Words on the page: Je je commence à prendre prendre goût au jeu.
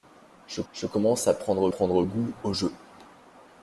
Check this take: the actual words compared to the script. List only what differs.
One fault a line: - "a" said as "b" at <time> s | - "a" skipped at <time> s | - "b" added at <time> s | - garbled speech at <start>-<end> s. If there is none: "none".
none